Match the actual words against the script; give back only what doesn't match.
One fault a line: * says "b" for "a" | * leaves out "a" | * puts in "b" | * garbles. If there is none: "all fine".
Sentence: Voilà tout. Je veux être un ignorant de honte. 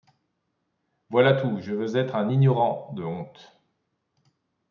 all fine